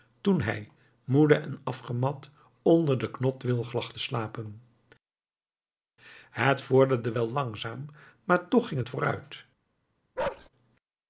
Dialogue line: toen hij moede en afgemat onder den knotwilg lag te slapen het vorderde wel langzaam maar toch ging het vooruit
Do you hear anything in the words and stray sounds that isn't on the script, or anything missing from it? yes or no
yes